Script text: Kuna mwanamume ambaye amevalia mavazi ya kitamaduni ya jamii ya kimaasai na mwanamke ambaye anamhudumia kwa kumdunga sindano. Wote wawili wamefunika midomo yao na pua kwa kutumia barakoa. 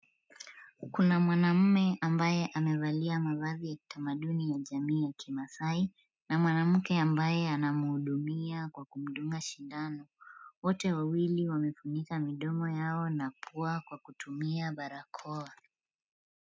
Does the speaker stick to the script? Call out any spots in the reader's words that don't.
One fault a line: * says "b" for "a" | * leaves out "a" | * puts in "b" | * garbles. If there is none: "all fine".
all fine